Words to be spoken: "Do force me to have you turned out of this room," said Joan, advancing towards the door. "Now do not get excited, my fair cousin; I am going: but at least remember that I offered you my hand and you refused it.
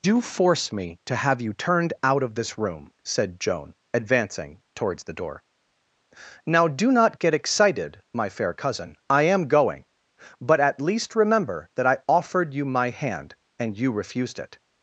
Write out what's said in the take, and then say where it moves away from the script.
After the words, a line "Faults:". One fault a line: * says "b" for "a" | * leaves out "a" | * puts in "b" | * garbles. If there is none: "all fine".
"Do force me to have you turned out of this room," said Joan, advancing towards the door. "Now do not get excited, my fair cousin; I am going: but at least remember that I offered you my hand and you refused it.
Faults:
all fine